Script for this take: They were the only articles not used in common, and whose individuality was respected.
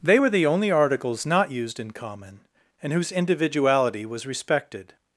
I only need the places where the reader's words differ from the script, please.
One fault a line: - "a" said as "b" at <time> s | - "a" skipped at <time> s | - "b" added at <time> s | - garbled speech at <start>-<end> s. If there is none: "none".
none